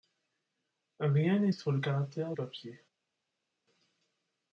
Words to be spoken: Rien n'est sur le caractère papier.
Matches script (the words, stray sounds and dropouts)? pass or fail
pass